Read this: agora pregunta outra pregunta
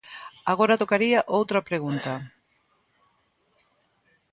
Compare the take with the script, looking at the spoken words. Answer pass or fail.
fail